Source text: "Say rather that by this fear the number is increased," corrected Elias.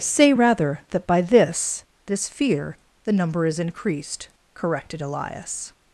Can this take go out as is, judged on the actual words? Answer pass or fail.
fail